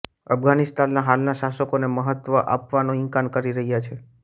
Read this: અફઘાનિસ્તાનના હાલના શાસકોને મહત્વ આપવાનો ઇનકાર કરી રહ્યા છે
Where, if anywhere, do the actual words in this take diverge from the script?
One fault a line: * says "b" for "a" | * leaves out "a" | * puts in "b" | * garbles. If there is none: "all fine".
all fine